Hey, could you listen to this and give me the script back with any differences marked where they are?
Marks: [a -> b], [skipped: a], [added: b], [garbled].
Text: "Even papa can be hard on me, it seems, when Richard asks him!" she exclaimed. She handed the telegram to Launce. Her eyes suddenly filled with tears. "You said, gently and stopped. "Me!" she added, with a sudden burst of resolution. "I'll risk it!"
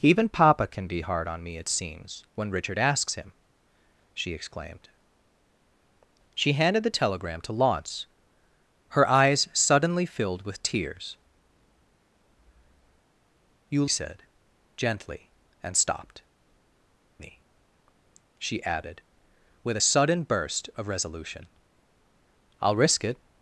"Even papa can be hard on me, it seems, when Richard asks him!" she exclaimed. She handed the telegram to Launce. Her eyes suddenly filled with tears. "You said, gently and stopped. "Me!" she added, with a sudden burst of resolution. "I'll risk it!"